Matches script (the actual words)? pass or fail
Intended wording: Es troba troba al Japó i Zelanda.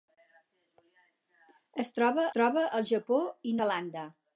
pass